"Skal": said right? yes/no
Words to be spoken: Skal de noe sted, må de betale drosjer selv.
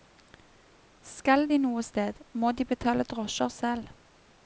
yes